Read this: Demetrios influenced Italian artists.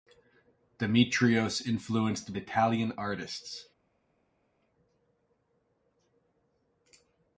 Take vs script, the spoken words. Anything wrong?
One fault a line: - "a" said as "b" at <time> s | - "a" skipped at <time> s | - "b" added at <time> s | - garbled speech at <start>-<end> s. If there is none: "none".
none